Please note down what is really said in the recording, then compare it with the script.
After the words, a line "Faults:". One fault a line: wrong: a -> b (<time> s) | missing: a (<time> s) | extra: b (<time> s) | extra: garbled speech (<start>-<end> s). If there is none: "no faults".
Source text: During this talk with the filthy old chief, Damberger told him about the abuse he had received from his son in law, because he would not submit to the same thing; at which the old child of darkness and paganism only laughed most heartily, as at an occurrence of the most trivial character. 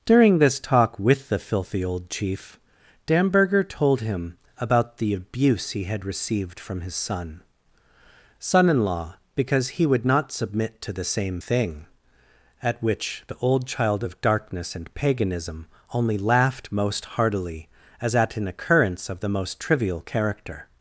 During this talk with the filthy old chief, Damberger told him about the abuse he had received from his son son in law, because he would not submit to the same thing; at which the old child of darkness and paganism only laughed most heartily, as at an occurrence of the most trivial character.
Faults:
extra: son (8.4 s)